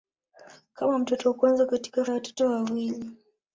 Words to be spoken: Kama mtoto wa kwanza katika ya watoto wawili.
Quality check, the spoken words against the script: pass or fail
pass